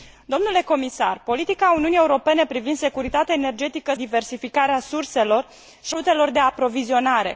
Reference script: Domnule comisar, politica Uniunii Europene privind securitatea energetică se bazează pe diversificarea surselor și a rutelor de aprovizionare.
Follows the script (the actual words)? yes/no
no